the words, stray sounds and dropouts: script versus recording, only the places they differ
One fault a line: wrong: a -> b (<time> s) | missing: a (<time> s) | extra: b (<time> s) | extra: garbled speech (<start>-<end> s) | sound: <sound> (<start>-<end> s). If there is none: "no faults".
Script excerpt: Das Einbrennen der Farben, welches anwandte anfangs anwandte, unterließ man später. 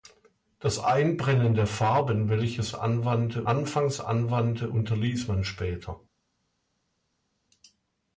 no faults